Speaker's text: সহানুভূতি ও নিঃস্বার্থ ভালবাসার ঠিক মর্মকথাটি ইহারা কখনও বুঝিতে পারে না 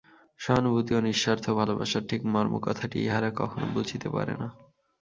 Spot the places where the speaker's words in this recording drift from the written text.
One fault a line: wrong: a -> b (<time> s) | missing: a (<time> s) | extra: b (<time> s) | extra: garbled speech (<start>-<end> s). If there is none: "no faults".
no faults